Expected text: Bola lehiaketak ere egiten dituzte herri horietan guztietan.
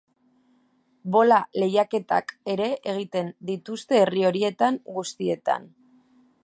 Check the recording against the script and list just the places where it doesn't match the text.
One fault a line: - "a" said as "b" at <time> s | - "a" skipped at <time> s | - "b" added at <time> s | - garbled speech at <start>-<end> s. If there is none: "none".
none